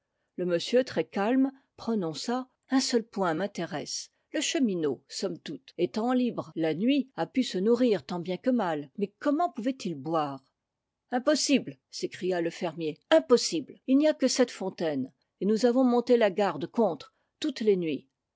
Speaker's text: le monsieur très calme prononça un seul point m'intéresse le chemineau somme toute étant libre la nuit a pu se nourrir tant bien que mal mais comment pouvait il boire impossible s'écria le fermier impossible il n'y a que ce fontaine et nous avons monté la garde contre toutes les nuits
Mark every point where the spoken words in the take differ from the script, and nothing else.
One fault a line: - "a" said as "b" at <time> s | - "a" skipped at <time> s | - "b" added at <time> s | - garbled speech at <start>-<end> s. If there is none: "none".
- "ce" said as "cette" at 14.3 s